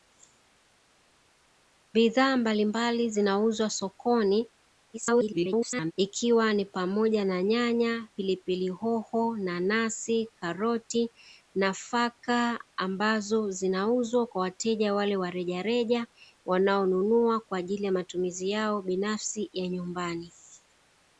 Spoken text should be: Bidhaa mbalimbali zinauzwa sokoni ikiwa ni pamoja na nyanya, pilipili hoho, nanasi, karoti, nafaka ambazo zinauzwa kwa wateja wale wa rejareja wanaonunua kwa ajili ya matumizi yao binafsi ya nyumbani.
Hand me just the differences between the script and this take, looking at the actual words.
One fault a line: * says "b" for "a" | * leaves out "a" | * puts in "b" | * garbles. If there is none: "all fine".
* garbles